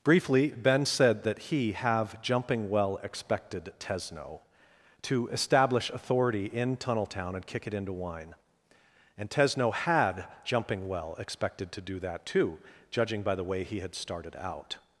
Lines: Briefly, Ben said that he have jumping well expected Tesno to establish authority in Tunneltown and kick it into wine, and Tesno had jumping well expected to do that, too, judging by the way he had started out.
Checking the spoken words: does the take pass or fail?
pass